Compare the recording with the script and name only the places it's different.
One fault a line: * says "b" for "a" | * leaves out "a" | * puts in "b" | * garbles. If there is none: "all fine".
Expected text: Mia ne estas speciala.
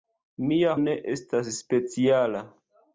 all fine